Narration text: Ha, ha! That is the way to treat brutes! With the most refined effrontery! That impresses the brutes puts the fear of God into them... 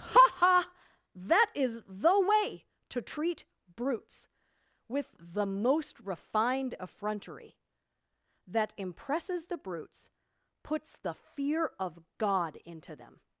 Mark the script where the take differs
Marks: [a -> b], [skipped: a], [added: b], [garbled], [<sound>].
Ha, ha! That is the way to treat brutes! With the most refined effrontery! That impresses the brutes puts the fear of God into them...